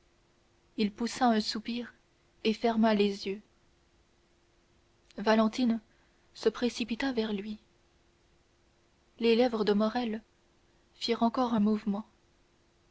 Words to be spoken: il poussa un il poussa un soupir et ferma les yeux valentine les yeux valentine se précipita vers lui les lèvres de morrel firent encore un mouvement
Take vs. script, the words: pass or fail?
fail